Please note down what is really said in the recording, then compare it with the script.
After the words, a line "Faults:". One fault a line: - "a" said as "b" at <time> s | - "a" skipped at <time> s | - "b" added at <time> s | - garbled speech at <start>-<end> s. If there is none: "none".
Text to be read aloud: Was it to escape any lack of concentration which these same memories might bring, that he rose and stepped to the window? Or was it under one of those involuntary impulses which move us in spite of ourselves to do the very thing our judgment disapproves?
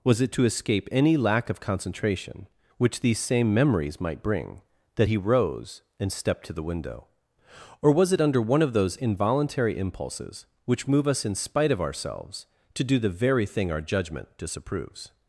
Was it to escape any lack of concentration which these same memories might bring, that he rose and stepped to the window? Or was it under one of those involuntary impulses which move us in spite of ourselves to do the very thing our judgment disapproves?
Faults:
none